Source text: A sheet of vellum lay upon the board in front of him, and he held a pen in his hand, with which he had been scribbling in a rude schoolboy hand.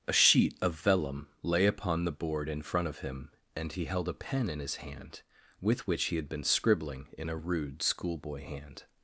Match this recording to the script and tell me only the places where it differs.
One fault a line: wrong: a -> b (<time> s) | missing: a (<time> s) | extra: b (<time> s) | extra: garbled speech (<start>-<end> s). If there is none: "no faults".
no faults